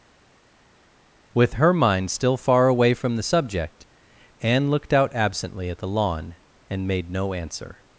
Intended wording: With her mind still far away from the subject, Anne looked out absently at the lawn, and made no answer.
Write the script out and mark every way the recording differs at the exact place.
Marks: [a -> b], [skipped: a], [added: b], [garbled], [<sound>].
With her mind still far away from the subject, Anne looked out absently at the lawn, and made no answer.